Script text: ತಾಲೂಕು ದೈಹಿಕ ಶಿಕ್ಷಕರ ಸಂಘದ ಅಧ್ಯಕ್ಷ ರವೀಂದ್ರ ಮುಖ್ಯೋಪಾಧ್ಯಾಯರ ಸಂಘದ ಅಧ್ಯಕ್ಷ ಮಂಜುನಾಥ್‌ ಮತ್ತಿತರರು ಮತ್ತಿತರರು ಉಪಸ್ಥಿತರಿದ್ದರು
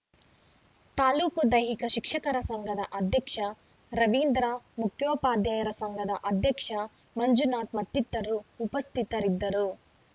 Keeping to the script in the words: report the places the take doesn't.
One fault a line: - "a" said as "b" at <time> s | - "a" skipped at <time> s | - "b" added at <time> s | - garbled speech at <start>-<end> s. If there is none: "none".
- "ಮತ್ತಿತರರು" skipped at 8.4 s